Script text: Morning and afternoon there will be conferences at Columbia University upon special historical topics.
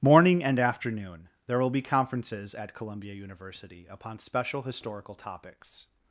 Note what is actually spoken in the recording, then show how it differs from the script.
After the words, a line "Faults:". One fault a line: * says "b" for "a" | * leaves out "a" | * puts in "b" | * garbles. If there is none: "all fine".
Morning and afternoon there will be conferences at Columbia University upon special historical topics.
Faults:
all fine